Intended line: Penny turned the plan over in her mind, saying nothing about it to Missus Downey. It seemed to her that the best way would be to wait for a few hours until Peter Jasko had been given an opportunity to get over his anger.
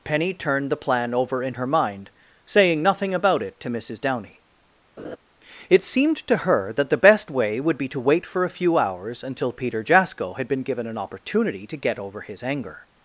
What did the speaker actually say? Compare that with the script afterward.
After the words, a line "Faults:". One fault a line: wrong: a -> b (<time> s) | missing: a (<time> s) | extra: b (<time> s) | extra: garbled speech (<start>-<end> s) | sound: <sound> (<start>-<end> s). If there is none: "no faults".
Penny turned the plan over in her mind, saying nothing about it to Missus Downey. It seemed to her that the best way would be to wait for a few hours until Peter Jasko had been given an opportunity to get over his anger.
Faults:
sound: laugh (5.0-5.2 s)